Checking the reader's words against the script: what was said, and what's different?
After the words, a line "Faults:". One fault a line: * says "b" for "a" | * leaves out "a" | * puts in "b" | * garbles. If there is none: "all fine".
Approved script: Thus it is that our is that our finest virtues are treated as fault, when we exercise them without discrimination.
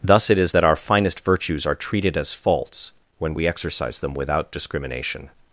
Thus it is that our finest virtues are treated as faults, when we exercise them without discrimination.
Faults:
* leaves out "is that our"
* says "faults" for "fault"